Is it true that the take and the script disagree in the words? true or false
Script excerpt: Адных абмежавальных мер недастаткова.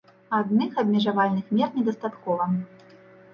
false